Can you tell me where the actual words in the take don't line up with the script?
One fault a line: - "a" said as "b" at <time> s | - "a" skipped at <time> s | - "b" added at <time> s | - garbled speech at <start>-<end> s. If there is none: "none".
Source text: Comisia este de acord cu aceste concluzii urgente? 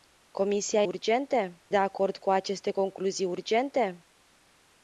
- "este" said as "urgente" at 0.8 s